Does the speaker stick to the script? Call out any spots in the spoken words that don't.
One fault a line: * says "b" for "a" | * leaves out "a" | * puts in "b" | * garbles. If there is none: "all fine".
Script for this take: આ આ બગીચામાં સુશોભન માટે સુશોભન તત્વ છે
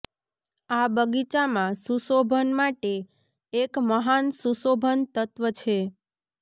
* leaves out "આ"
* puts in "એક મહાન"